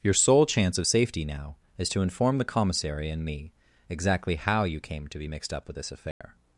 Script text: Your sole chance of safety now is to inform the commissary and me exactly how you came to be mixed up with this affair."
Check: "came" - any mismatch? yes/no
no